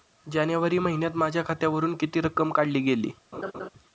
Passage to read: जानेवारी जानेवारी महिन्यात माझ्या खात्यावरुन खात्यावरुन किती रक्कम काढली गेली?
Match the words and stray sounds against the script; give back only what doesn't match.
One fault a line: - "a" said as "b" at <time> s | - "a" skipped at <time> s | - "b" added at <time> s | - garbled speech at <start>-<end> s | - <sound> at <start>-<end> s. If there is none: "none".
- "जानेवारी" skipped at 0.8 s
- "खात्यावरुन" skipped at 1.9 s
- laugh at 3.3-3.7 s